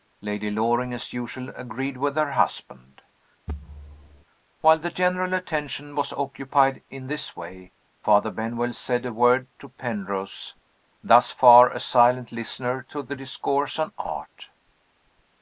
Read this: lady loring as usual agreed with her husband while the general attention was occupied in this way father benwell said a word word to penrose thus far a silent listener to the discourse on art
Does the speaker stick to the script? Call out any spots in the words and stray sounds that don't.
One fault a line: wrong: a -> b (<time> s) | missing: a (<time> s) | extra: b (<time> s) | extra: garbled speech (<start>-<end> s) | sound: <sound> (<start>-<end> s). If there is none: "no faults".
sound: thud (3.5-4.3 s)
missing: word (9.5 s)